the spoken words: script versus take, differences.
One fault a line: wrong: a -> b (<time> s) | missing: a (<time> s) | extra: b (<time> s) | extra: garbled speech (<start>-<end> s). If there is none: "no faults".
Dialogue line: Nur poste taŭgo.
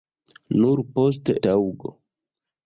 no faults